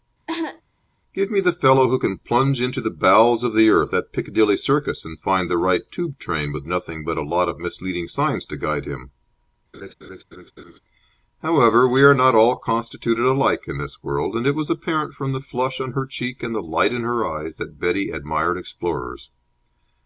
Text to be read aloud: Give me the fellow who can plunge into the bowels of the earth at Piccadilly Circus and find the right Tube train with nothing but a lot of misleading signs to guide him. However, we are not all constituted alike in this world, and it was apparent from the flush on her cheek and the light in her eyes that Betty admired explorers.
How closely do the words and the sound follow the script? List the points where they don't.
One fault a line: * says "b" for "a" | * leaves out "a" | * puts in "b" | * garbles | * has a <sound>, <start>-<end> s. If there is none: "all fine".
* has a cough, 0.3-0.6 s
* has a laugh, 9.7-10.8 s